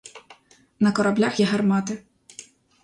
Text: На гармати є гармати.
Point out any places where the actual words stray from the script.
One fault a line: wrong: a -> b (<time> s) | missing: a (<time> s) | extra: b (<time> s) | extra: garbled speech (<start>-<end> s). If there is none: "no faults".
wrong: гармати -> кораблях (0.9 s)